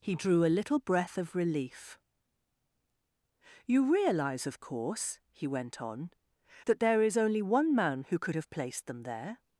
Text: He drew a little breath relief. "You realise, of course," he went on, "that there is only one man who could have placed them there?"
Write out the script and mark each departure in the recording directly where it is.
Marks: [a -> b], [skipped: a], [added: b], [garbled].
He drew a little breath [added: of] relief. "You realise, of course," he went on, "that there is only one man who could have placed them there?"